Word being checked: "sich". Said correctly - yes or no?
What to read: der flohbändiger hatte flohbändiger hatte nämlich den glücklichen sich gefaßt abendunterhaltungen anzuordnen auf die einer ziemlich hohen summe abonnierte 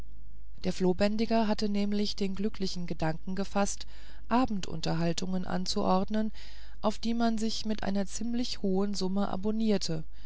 no